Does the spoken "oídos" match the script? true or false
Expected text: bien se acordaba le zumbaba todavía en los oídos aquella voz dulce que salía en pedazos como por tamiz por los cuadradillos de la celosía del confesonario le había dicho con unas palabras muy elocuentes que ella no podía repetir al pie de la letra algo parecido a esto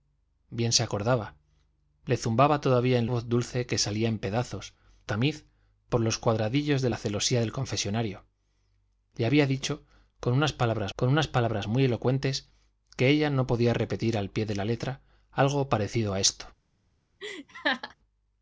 false